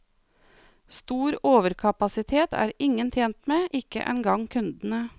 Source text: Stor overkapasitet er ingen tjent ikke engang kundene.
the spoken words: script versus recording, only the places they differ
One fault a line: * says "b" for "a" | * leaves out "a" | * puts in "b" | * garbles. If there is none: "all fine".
* puts in "med"